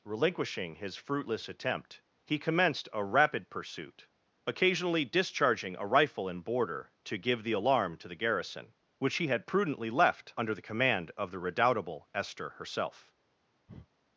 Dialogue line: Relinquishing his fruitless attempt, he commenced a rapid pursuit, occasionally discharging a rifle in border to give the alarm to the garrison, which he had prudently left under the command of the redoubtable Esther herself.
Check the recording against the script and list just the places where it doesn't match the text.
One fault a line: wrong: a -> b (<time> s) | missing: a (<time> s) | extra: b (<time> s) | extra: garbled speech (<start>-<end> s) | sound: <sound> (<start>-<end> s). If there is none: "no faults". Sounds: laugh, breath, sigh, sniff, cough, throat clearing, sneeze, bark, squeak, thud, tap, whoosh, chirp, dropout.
sound: breath (13.7-13.9 s)